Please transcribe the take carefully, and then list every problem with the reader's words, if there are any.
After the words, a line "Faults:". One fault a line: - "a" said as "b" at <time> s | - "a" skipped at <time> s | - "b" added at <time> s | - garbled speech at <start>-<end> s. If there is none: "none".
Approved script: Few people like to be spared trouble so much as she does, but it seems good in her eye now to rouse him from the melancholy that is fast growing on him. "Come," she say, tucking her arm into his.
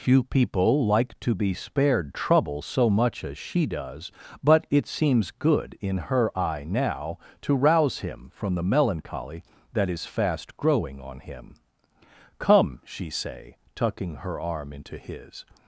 Few people like to be spared trouble so much as she does, but it seems good in her eye now to rouse him from the melancholy that is fast growing on him. "Come," she say, tucking her arm into his.
Faults:
none